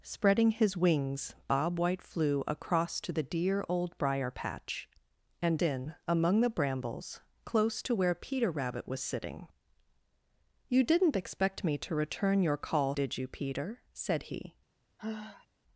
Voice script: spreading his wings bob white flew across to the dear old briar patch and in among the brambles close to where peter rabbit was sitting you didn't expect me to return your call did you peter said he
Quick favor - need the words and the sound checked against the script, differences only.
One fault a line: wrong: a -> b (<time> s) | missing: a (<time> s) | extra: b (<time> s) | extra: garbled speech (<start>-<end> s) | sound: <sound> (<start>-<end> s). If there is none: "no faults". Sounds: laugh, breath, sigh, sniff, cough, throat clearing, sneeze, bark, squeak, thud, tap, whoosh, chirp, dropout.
sound: sigh (15.0-15.5 s)